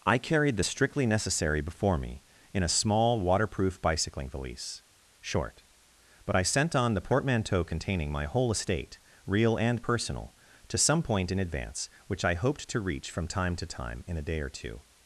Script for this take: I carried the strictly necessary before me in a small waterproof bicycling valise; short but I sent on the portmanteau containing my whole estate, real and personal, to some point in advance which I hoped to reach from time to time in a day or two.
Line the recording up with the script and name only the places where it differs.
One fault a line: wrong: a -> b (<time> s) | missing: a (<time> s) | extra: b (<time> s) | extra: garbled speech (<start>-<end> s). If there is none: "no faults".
no faults